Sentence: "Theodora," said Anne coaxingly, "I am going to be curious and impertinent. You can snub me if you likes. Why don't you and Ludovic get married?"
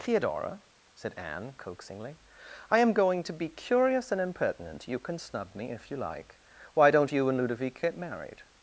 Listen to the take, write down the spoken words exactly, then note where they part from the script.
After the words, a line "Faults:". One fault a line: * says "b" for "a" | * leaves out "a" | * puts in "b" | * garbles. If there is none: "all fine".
"Theodora," said Anne coaxingly, "I am going to be curious and impertinent. You can snub me if you like. Why don't you and Ludovic get married?"
Faults:
* says "like" for "likes"